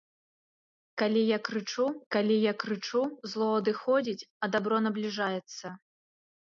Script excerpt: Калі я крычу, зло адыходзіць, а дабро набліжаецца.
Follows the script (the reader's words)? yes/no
no